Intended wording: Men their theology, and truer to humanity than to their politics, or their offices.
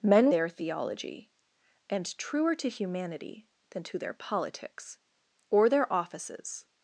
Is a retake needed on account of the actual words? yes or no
no